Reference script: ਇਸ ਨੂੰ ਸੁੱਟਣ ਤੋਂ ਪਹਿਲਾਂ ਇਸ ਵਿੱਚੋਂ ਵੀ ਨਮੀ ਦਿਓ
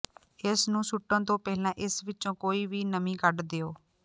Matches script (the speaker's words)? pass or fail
fail